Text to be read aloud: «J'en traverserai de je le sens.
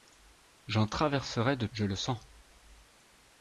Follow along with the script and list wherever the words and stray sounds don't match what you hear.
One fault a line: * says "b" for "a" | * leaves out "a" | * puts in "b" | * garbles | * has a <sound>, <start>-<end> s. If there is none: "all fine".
all fine